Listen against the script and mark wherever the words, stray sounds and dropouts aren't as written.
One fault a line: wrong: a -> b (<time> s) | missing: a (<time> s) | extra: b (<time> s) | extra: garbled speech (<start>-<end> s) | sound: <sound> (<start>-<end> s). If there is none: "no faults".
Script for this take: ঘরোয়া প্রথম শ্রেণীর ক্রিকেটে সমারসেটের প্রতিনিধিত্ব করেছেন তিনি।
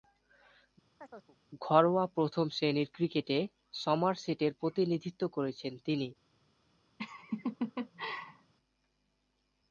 sound: chirp (1.0-1.4 s)
sound: laugh (7.0-8.5 s)